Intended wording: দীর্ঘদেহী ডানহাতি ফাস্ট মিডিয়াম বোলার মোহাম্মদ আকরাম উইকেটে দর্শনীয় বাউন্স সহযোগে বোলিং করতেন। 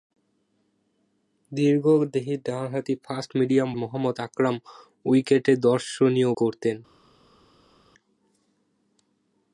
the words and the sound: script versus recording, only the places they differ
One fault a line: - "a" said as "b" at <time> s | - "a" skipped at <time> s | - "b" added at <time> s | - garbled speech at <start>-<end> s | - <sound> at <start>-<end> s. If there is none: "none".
- "বোলার" skipped at 3.7 s
- "বাউন্স সহযোগে বোলিং" skipped at 6.3 s